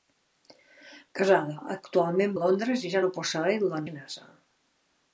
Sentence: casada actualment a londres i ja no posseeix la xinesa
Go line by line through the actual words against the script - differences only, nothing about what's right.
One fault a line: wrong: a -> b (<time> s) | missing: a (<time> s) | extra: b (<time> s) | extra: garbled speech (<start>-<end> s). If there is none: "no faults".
no faults